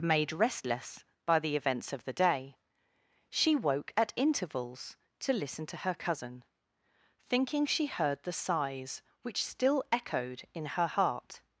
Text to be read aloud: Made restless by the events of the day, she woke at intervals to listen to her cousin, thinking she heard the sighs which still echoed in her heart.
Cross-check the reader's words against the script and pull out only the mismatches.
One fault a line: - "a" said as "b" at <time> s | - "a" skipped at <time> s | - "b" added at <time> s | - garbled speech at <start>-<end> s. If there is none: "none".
none